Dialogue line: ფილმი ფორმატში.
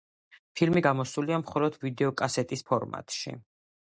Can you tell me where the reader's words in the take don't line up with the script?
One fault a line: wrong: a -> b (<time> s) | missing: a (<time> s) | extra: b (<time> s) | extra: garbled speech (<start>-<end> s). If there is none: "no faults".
extra: გამოსულია მხოლოდ ვიდეოკასეტის (0.8 s)